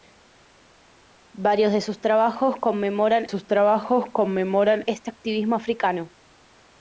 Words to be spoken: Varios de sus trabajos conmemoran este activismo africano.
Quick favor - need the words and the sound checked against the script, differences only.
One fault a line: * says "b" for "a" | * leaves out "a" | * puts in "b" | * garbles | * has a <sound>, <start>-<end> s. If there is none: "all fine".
* puts in "sus trabajos conmemoran"